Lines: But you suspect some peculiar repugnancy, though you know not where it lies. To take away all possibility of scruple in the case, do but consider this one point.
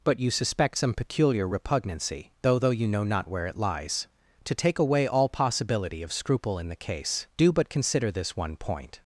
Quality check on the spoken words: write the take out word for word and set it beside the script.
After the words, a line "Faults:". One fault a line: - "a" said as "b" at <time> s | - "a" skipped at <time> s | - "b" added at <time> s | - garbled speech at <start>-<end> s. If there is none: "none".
But you suspect some peculiar repugnancy, though though you know not where it lies. To take away all possibility of scruple in the case, do but consider this one point.
Faults:
- "though" added at 2.6 s